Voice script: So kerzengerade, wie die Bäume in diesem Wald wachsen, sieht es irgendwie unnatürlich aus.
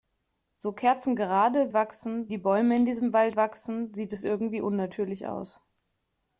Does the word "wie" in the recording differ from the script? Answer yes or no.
yes